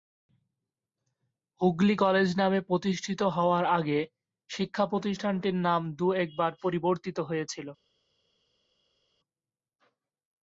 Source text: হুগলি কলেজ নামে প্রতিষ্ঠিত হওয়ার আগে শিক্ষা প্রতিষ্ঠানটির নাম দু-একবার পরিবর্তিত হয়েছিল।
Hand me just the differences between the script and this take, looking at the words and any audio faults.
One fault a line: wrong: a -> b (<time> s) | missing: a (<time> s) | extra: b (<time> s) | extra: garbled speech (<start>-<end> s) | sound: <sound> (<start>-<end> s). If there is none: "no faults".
no faults